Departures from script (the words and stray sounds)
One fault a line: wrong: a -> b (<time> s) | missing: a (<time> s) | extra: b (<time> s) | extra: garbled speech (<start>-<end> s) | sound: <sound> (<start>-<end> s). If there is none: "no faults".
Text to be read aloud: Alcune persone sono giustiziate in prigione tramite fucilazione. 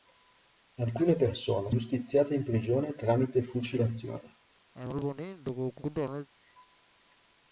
missing: sono (1.7 s)
sound: cough (4.7-6.3 s)